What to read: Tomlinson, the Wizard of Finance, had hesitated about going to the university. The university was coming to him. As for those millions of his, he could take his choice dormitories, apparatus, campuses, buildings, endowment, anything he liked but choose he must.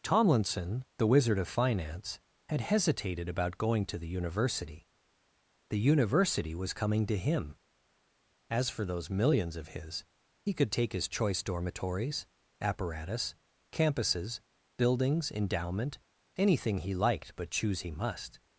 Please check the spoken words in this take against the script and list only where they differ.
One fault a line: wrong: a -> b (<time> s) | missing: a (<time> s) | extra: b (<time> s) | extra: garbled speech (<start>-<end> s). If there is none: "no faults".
no faults